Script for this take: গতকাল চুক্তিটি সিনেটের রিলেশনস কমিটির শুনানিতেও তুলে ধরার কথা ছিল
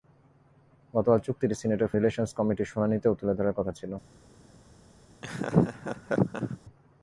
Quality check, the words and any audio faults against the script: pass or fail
fail